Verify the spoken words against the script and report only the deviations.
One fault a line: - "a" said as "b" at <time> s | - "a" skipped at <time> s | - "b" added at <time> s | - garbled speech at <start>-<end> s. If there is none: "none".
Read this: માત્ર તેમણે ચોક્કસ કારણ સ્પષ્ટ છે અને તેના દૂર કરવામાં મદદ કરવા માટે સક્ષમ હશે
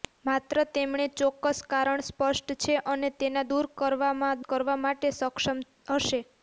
- "મદદ" skipped at 4.4 s